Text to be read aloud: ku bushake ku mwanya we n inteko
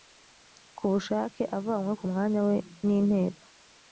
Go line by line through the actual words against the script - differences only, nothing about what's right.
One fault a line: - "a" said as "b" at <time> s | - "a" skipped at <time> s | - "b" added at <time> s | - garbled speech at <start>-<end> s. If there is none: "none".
- "avanywe" added at 1.6 s